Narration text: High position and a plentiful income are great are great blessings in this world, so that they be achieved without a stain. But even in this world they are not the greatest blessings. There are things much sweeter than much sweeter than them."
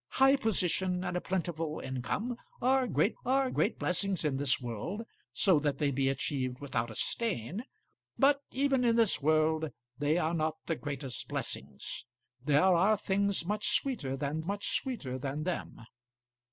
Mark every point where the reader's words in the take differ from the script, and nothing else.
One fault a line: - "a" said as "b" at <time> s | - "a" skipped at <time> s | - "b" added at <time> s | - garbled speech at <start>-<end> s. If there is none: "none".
none